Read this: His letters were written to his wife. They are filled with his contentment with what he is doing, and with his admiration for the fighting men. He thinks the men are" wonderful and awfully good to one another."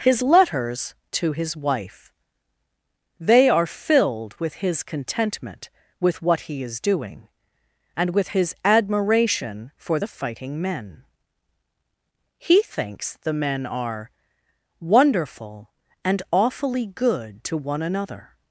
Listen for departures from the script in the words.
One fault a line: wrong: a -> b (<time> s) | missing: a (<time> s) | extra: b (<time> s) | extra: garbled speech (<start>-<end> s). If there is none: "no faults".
missing: were written (0.9 s)